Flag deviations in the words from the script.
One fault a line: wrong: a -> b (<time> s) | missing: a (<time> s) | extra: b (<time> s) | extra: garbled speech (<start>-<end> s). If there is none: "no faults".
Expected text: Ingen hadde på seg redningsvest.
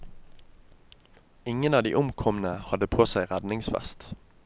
extra: av de omkomne (1.7 s)